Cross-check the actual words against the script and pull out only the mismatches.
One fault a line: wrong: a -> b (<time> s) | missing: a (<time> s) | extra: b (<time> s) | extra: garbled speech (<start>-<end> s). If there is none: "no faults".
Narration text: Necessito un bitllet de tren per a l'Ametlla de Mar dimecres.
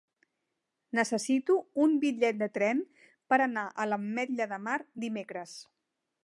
extra: anar (3.5 s)